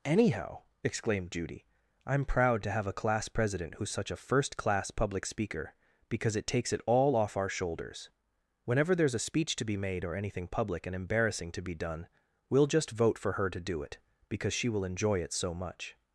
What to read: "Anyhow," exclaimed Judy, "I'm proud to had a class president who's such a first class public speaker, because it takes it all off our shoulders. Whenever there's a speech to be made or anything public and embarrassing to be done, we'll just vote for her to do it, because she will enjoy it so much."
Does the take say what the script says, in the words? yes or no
no